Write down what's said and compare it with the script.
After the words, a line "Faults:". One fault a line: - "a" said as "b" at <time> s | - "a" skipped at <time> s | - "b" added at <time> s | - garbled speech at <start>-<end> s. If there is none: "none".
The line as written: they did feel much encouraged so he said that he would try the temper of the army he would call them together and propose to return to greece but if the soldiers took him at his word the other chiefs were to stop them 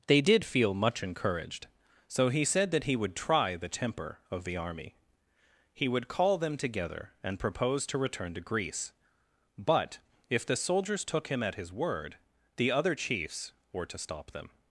they did feel much encouraged so he said that he would try the temper of the army he would call them together and propose to return to greece but if the soldiers took him at his word the other chiefs were to stop them
Faults:
none